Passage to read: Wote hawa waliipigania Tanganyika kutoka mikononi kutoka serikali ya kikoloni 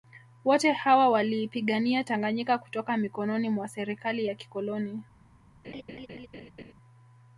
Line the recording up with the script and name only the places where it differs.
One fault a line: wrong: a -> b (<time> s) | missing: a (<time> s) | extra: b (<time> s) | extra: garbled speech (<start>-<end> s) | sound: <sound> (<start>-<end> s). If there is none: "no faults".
wrong: kutoka -> mwa (3.5 s)
sound: laugh (5.6-6.7 s)